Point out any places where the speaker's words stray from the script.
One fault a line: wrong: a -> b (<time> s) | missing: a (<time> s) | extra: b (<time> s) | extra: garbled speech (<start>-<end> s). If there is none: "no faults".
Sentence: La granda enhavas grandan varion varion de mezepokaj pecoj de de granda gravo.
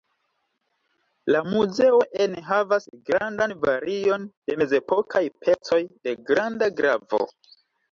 wrong: granda -> muzeo (1.5 s)
missing: varion (4.3 s)
missing: de (6.2 s)